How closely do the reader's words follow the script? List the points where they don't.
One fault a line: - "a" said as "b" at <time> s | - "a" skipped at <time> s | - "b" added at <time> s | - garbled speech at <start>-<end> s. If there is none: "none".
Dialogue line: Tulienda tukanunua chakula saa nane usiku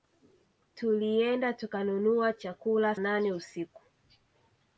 - "saa" skipped at 3.0 s